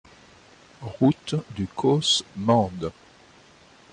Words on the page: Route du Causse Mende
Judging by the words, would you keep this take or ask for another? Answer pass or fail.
pass